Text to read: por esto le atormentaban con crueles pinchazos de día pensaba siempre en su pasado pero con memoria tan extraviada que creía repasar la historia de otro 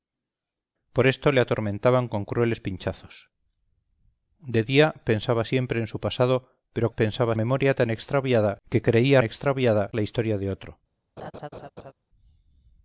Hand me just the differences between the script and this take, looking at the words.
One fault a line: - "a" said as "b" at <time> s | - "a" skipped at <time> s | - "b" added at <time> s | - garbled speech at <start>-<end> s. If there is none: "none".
- "con" said as "pensaba" at 6.9 s
- "repasar" said as "extraviada" at 9.2 s